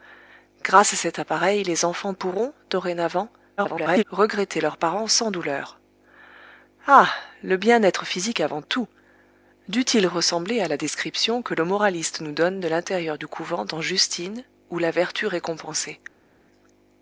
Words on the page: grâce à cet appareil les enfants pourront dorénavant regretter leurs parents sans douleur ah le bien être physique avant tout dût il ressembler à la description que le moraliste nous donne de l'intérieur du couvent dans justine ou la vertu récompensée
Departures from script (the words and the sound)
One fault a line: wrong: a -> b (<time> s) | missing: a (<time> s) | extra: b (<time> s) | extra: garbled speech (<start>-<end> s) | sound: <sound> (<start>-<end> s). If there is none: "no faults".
extra: garbled speech (3.6-4.0 s)